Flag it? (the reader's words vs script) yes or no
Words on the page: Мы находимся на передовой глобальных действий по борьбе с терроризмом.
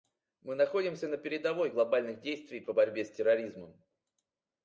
no